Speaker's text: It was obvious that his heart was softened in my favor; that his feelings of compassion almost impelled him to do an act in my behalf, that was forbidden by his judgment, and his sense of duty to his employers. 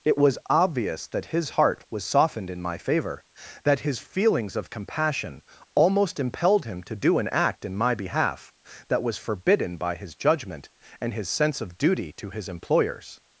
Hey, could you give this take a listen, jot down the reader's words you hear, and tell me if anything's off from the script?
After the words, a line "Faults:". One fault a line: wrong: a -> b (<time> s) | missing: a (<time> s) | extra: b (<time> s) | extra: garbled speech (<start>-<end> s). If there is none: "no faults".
It was obvious that his heart was softened in my favor; that his feelings of compassion almost impelled him to do an act in my behalf, that was forbidden by his judgment, and his sense of duty to his employers.
Faults:
no faults